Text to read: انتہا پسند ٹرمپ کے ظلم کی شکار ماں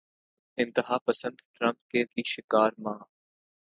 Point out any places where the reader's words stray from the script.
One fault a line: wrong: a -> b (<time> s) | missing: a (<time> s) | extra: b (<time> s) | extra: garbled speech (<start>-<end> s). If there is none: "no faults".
missing: ظلم (2.0 s)